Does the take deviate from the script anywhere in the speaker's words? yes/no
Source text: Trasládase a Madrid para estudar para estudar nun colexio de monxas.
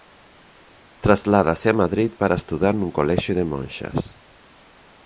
yes